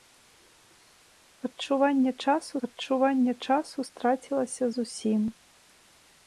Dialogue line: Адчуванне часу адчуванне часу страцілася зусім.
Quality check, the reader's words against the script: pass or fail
pass